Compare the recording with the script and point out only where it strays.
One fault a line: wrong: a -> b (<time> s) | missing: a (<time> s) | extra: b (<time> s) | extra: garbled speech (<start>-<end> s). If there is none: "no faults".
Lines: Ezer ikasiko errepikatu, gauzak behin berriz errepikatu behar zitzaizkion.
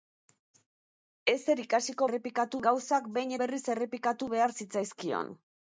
no faults